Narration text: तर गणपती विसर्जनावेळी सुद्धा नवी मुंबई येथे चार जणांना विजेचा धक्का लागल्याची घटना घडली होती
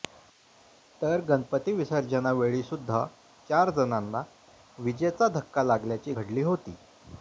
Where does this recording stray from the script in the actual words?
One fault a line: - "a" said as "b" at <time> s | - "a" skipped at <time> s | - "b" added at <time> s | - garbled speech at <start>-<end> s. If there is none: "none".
- "नवी मुंबई येथे" skipped at 3.0 s
- "घटना" skipped at 6.1 s